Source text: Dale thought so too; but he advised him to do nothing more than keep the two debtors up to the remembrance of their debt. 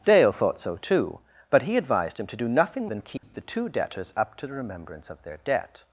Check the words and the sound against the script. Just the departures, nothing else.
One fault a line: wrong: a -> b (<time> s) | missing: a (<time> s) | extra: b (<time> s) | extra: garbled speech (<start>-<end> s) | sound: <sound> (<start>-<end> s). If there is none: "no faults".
missing: more (2.9 s)
sound: dropout (3.2-3.2 s)